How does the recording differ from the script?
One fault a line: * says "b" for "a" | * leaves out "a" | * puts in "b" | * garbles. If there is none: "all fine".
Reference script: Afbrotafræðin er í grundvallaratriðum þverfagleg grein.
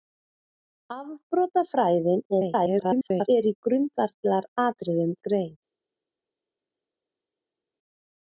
* garbles
* leaves out "þverfagleg"